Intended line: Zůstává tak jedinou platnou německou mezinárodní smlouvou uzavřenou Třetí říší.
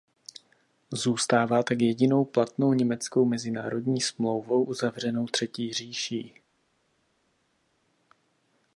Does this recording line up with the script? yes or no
yes